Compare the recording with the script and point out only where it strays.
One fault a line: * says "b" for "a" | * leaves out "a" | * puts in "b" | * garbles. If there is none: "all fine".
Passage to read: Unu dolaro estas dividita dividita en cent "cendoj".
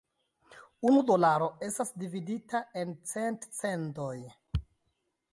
* leaves out "dividita"